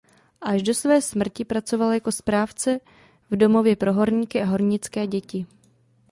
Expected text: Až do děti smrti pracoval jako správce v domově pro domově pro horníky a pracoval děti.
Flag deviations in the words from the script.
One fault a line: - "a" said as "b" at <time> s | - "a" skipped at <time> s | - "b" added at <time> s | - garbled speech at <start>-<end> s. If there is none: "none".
- "děti" said as "své" at 0.7 s
- "domově pro" skipped at 3.9 s
- "pracoval" said as "hornické" at 4.5 s